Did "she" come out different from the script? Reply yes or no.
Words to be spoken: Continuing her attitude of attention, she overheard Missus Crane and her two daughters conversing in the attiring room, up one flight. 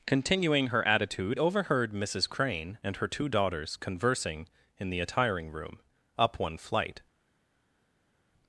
yes